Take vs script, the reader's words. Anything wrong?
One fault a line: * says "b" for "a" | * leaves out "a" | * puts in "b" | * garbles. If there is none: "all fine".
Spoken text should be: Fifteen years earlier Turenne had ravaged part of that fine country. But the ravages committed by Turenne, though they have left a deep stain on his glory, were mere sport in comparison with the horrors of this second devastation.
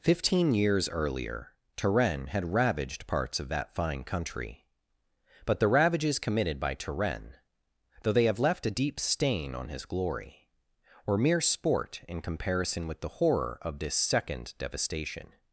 * says "parts" for "part"
* says "horror" for "horrors"